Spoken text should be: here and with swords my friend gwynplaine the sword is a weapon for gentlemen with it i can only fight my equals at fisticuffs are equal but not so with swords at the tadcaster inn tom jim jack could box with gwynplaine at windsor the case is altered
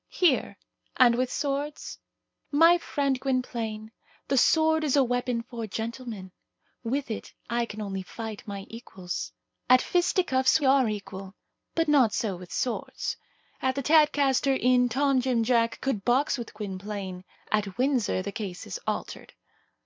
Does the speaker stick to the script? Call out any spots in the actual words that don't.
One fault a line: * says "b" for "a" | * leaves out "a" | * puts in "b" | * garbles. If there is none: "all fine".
all fine